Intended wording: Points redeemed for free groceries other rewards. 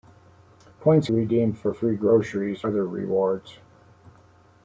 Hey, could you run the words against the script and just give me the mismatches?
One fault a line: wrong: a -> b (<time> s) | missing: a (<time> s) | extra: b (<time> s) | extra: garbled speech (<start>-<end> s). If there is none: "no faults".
no faults